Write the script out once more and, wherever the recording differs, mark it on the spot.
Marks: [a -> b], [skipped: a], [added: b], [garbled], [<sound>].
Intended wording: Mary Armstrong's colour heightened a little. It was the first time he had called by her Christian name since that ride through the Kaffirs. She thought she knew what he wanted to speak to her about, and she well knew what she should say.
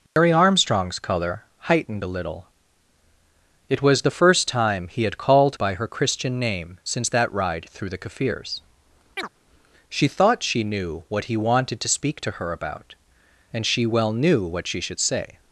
Mary [dropout] Armstrong's colour heightened a little. It was the first time he had called by her Christian name since that ride through the Kaffirs. [chirp] She thought she knew what he wanted to speak to her about, and she well knew what she should say.